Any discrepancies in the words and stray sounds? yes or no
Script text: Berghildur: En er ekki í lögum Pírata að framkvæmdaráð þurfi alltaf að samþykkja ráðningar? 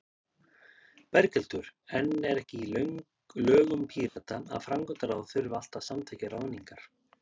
yes